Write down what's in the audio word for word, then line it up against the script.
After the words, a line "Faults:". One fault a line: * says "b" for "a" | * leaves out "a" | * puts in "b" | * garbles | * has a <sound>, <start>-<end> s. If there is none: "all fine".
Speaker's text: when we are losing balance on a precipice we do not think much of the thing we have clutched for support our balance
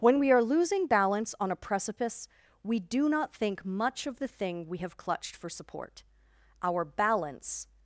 when we are losing balance on a precipice we do not think much of the thing we have clutched for support our balance
Faults:
all fine